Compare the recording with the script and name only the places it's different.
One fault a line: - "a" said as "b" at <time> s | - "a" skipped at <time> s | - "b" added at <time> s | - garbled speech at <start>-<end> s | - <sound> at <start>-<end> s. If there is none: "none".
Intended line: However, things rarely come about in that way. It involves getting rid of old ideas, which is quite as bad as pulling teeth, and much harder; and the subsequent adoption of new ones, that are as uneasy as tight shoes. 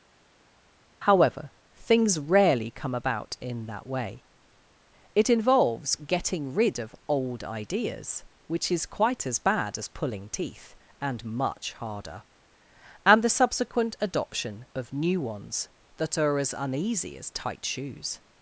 none